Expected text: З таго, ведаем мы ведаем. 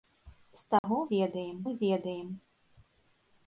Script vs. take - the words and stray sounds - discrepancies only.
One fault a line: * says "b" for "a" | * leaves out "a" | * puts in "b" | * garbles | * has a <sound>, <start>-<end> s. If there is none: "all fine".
* has a dropout, 0.8-0.8 s